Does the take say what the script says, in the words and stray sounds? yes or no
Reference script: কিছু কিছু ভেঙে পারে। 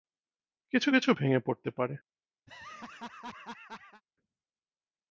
no